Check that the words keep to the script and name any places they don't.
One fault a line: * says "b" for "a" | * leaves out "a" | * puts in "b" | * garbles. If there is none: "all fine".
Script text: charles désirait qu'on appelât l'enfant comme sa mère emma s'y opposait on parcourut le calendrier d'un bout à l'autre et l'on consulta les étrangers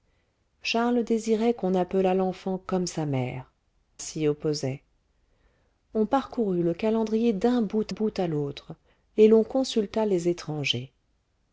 * leaves out "emma"
* puts in "bout"